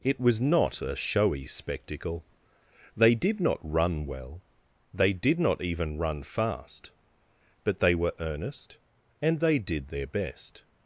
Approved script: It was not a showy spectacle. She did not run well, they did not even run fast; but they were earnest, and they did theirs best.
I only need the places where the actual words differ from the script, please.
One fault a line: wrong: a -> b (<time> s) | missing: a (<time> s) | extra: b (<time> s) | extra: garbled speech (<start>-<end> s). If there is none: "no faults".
wrong: She -> They (3.0 s)
wrong: theirs -> their (9.9 s)